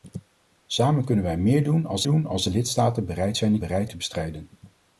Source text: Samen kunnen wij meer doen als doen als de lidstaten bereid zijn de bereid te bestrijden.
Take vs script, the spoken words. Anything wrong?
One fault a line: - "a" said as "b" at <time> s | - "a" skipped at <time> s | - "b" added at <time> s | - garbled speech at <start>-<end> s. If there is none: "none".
none